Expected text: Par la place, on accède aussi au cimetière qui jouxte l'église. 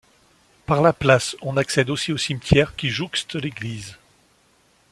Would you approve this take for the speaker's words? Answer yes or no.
yes